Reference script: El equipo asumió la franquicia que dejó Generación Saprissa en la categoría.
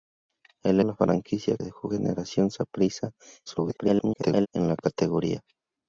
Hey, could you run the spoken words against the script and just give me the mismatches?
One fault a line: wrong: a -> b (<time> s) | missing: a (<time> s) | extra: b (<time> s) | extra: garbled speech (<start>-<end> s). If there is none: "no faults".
missing: equipo asumió (0.8 s)
missing: que (1.6 s)
extra: garbled speech (3.5-4.5 s)